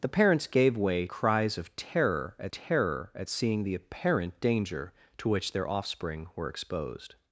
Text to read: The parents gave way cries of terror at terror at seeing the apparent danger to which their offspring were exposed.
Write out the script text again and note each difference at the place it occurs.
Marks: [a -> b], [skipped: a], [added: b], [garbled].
The parents gave way cries of terror at terror at seeing the apparent danger to which their offspring were exposed.